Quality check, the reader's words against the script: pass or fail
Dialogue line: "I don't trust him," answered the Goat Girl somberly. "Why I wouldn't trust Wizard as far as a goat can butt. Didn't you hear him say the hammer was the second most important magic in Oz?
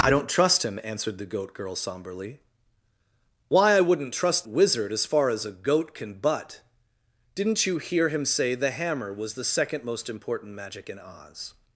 pass